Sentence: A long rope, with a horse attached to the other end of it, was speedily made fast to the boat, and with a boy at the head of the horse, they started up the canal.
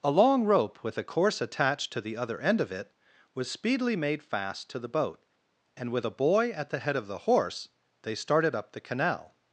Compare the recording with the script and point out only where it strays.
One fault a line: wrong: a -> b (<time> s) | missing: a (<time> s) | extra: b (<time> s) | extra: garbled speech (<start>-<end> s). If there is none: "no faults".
wrong: horse -> course (1.0 s)